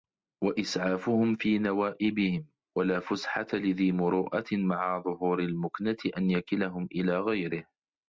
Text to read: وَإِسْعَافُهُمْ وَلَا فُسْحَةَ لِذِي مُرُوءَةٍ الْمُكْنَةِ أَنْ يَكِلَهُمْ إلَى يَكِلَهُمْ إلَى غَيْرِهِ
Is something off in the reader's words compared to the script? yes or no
yes